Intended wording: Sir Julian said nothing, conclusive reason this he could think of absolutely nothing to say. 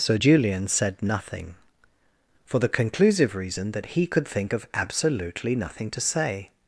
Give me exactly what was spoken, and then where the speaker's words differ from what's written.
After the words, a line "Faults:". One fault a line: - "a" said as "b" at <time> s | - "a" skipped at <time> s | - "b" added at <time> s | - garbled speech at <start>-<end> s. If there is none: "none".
Sir Julian said nothing, for the conclusive reason that he could think of absolutely nothing to say.
Faults:
- "for the" added at 2.5 s
- "this" said as "that" at 3.7 s